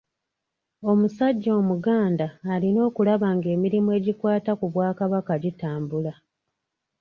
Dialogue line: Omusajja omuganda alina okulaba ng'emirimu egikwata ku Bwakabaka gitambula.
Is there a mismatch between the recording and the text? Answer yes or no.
no